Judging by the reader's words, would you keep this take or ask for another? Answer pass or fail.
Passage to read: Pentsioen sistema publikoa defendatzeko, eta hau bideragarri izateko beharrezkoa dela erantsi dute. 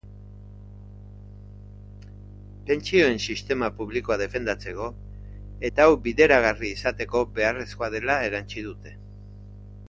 pass